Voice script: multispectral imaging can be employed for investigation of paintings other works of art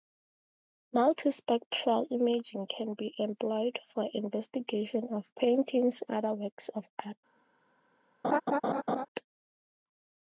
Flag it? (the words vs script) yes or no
no